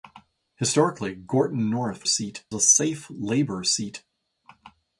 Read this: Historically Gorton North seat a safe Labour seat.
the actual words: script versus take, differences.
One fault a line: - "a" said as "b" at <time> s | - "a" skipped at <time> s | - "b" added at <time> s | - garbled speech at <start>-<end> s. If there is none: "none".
none